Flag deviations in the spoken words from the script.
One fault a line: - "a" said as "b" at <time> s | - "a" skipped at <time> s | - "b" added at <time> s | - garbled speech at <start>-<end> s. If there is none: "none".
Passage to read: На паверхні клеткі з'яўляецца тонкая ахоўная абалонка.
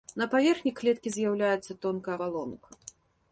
- "ахоўная" skipped at 2.1 s